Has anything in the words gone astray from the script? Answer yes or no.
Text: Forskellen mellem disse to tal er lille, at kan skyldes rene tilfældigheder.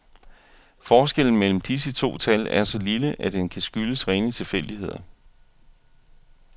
yes